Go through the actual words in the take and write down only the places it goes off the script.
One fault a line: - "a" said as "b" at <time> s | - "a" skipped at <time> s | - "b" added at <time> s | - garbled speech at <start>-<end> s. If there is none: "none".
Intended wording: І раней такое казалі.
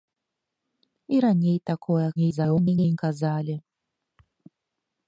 - garbled speech at 2.2-3.0 s